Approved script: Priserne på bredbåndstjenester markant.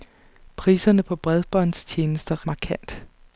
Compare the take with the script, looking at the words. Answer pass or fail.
pass